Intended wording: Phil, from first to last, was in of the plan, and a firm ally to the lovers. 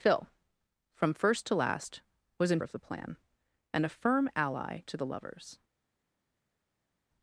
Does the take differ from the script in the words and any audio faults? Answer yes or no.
no